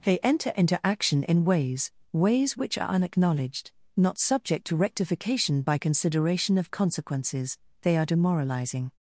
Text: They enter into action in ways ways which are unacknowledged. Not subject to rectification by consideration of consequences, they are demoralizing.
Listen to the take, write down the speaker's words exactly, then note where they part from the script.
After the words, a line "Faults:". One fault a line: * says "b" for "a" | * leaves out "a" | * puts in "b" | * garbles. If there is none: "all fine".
They enter into action in ways ways which are unacknowledged. Not subject to rectification by consideration of consequences, they are demoralizing.
Faults:
all fine